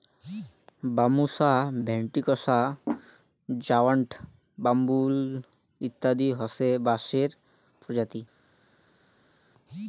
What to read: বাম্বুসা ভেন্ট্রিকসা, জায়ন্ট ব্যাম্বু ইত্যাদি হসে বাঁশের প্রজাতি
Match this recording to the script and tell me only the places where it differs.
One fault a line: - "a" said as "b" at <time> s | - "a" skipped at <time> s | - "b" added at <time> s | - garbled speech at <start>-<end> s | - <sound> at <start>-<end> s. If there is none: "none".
none